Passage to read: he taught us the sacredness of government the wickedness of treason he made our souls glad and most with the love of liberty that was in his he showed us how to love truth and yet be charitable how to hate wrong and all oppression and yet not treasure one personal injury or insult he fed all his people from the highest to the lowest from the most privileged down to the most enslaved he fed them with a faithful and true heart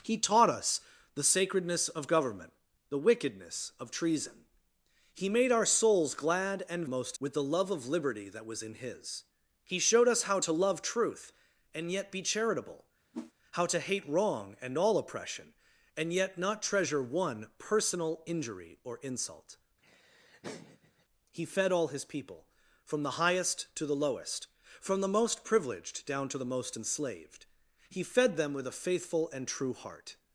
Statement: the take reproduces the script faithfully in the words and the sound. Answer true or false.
false